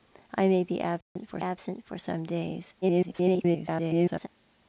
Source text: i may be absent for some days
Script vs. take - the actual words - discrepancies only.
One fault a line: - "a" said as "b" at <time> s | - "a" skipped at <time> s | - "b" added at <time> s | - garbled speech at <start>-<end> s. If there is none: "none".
- "absent for" added at 1.4 s
- garbled speech at 2.8-4.3 s